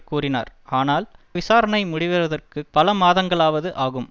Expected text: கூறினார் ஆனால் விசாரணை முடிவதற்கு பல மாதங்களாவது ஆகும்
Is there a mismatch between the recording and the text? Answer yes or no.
no